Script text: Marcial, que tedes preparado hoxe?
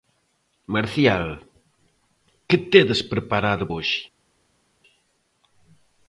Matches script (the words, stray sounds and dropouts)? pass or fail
pass